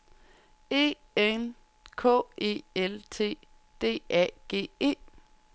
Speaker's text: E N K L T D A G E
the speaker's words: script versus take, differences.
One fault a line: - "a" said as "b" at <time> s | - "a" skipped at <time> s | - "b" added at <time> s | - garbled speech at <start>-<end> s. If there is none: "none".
- "E" added at 2.4 s